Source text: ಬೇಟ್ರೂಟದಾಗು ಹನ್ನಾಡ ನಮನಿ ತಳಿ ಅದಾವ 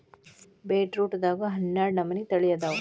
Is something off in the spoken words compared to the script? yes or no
no